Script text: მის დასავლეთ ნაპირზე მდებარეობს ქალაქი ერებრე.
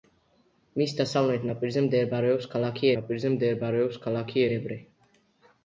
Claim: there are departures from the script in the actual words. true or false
true